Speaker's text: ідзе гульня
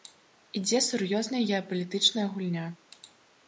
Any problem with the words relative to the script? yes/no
yes